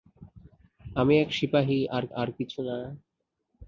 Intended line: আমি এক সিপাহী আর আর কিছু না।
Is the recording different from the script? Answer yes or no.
no